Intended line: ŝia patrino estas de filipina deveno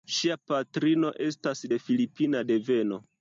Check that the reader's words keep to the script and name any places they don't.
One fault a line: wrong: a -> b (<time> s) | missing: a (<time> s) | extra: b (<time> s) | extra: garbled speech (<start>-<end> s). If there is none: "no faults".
no faults